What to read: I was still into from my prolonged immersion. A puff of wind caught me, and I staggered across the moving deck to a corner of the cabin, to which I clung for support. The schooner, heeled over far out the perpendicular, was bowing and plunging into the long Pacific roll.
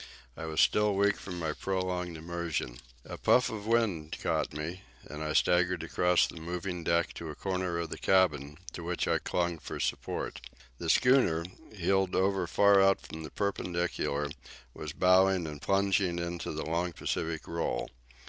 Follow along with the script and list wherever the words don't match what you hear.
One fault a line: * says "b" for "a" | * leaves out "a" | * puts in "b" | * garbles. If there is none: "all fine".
* says "weak" for "into"
* puts in "from"